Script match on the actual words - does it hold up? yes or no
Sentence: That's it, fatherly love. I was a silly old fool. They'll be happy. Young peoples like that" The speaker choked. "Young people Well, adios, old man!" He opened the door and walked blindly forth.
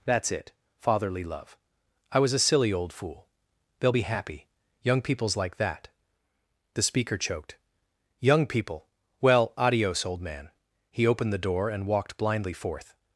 yes